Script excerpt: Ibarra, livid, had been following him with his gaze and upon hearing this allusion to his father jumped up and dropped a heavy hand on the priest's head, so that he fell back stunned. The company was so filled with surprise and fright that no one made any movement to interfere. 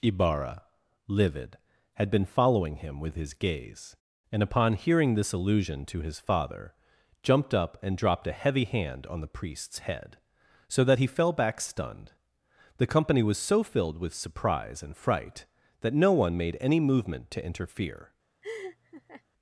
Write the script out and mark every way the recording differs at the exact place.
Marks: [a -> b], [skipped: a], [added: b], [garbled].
Ibarra, livid, had been following him with his gaze and upon hearing this allusion to his father jumped up and dropped a heavy hand on the priest's head, so that he fell back stunned. The company was so filled with surprise and fright that no one made any movement to interfere.